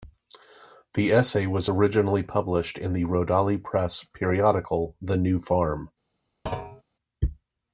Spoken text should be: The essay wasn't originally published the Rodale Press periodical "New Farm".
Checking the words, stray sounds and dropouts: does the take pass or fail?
fail